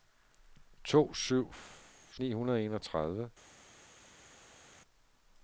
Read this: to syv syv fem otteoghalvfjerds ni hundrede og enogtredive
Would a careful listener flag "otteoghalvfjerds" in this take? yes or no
yes